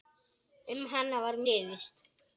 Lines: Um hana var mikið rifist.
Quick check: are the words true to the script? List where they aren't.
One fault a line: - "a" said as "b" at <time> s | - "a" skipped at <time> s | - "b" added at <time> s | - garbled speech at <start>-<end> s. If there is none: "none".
- "mikið" skipped at 1.4 s